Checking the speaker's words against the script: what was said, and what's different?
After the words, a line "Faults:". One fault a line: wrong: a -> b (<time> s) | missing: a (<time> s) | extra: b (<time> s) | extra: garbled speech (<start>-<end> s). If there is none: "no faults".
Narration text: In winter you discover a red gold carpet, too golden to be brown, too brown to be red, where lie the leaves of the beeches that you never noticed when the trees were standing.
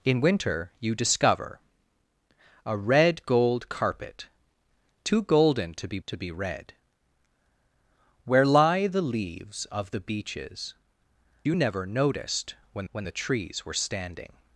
In winter you discover a red gold carpet, too golden to be to be red, where lie the leaves of the beeches you never noticed when when the trees were standing.
Faults:
missing: brown too brown (6.0 s)
missing: that (10.7 s)
extra: when (12.9 s)